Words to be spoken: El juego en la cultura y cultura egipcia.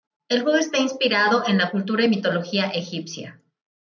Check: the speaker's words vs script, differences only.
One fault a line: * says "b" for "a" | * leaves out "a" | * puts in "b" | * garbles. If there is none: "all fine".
* puts in "está inspirado"
* says "mitología" for "cultura"